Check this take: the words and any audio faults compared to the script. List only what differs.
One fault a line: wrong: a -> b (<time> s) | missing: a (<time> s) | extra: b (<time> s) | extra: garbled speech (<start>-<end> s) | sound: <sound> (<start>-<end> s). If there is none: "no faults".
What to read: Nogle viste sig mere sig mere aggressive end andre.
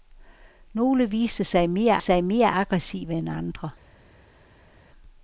no faults